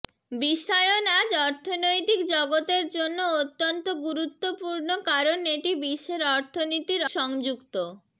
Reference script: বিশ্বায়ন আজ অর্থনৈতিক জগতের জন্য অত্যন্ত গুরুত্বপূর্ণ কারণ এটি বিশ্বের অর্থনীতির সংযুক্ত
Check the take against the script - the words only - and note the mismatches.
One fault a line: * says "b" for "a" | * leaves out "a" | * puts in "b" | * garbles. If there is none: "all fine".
all fine